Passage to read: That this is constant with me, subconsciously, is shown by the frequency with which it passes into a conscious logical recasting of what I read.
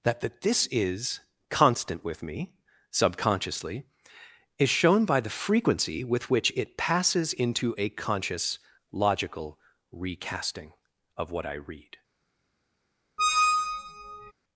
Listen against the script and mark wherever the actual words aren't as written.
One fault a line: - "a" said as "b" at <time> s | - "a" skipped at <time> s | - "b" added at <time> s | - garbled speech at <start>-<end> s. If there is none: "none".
- "that" added at 0.2 s